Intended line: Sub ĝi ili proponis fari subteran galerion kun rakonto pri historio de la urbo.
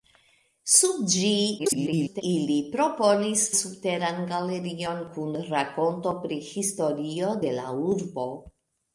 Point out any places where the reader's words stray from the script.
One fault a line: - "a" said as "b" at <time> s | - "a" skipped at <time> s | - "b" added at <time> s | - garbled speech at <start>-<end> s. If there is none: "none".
- garbled speech at 1.6-2.2 s
- "fari" skipped at 3.4 s